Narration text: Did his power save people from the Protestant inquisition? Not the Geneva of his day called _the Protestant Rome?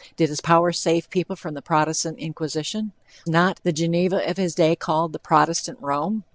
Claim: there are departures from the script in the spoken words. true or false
false